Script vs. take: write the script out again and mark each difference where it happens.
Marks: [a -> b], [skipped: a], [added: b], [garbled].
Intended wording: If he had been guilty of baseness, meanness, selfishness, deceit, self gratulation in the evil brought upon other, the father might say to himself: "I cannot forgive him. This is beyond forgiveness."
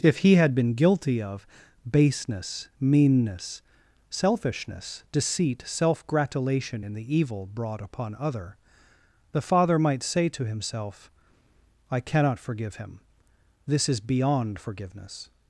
If he had been guilty of baseness, meanness, selfishness, deceit, self gratulation in the evil brought upon other, the father might say to himself: "I cannot forgive him. This is beyond forgiveness."